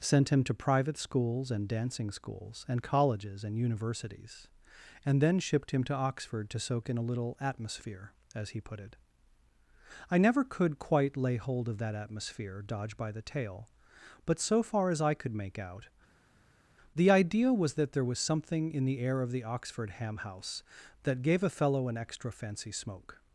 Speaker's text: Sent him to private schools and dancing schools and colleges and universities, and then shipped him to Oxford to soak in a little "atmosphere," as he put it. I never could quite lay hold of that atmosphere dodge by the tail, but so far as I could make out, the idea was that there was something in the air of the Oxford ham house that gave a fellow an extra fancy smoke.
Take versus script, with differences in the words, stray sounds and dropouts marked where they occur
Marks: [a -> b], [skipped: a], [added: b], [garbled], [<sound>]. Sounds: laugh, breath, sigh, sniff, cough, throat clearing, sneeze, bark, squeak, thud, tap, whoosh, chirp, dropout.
Sent him to private schools and dancing schools and colleges and universities, and then shipped him to Oxford to soak in a little "atmosphere," as he put it. I never could quite lay hold of that atmosphere dodge by the tail, but so far as I could make out, the idea was that there was something in the air of the Oxford ham house that gave a fellow an extra fancy smoke.